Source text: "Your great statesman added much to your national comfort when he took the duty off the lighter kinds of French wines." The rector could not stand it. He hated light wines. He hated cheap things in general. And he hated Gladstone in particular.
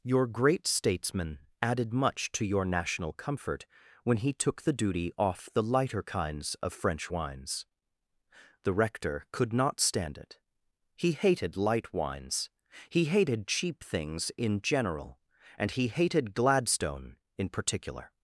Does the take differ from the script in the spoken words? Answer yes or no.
no